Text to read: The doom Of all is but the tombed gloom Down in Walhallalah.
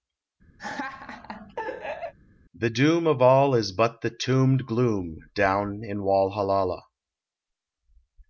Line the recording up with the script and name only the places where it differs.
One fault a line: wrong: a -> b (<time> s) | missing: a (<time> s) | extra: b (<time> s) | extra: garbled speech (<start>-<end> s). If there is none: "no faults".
no faults